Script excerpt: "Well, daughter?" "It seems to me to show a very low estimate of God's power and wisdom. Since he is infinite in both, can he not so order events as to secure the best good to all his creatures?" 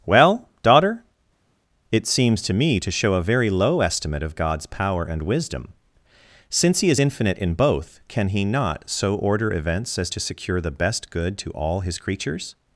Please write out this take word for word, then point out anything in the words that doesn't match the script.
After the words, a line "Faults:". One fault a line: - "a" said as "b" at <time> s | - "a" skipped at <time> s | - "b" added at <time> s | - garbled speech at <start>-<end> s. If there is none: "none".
"Well, daughter?" "It seems to me to show a very low estimate of God's power and wisdom. Since he is infinite in both, can he not so order events as to secure the best good to all his creatures?"
Faults:
none